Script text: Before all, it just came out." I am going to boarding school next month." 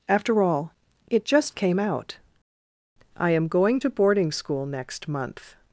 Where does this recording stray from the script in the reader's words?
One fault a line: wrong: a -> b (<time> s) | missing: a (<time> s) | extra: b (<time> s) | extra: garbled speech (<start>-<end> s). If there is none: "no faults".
wrong: Before -> After (0.1 s)